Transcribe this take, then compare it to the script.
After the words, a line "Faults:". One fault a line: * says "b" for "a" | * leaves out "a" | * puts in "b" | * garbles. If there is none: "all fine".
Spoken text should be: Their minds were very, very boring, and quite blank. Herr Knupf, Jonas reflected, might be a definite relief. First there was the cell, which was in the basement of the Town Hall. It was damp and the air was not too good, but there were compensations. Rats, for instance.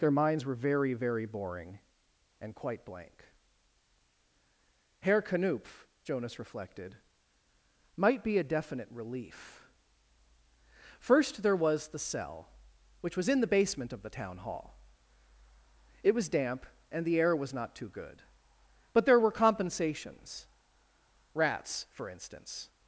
Their minds were very, very boring, and quite blank. Herr Knupf, Jonas reflected, might be a definite relief. First there was the cell, which was in the basement of the Town Hall. It was damp and the air was not too good, but there were compensations. Rats, for instance.
Faults:
all fine